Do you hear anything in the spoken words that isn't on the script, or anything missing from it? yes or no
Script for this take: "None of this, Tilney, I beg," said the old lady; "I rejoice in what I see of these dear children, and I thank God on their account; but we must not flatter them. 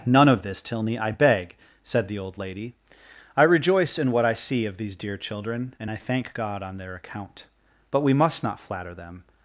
no